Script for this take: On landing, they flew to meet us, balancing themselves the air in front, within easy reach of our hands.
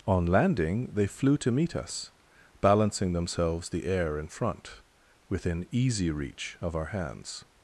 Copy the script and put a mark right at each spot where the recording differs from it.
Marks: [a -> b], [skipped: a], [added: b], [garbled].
On landing, they flew to meet us, balancing themselves the air in front, within easy reach of our hands.